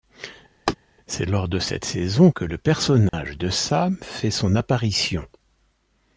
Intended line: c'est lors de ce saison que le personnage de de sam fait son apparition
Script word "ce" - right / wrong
wrong